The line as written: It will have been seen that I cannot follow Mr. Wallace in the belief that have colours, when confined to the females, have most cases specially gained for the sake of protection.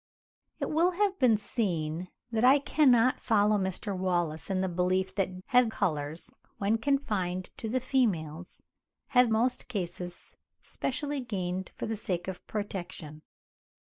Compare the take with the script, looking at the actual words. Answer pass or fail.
pass